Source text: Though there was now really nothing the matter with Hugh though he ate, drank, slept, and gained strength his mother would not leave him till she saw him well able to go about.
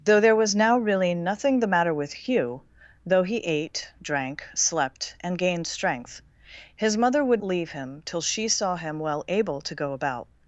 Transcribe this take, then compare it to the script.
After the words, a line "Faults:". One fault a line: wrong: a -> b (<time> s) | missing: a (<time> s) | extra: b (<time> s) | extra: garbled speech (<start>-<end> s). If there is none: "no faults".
Though there was now really nothing the matter with Hugh though he ate, drank, slept, and gained strength his mother would leave him till she saw him well able to go about.
Faults:
missing: not (7.4 s)